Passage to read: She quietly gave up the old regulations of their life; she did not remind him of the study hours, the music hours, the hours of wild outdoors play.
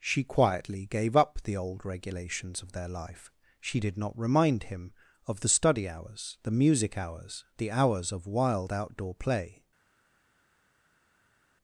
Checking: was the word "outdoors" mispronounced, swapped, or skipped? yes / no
yes